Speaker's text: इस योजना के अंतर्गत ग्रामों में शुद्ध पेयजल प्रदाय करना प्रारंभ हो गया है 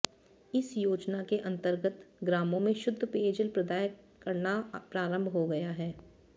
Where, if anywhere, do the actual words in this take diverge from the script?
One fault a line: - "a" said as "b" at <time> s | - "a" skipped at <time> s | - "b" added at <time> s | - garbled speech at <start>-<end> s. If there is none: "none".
none